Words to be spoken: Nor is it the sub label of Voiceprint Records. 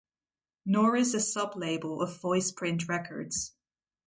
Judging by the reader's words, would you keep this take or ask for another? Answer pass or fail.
fail